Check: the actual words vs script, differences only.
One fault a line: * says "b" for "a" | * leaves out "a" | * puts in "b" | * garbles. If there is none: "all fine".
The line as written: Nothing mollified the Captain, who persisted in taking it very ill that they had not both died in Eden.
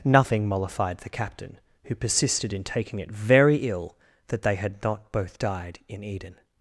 all fine